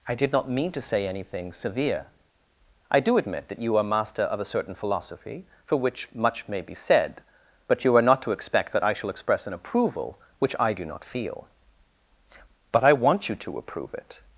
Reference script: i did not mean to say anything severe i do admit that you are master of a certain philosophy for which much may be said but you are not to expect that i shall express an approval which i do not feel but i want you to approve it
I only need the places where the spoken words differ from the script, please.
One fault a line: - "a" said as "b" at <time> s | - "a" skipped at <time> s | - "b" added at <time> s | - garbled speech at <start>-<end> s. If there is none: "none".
none